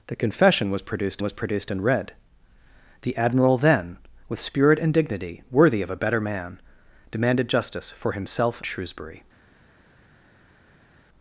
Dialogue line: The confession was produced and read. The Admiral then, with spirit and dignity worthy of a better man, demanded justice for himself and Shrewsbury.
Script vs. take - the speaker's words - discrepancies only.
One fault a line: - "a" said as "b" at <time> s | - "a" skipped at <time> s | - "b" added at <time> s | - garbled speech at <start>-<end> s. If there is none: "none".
- "was produced" added at 1.2 s
- "and" skipped at 8.6 s